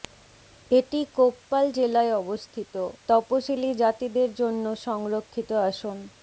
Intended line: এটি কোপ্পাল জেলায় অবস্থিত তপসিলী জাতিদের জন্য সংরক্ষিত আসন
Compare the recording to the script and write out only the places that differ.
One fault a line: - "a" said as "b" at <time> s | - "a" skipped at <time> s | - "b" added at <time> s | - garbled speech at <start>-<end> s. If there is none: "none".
none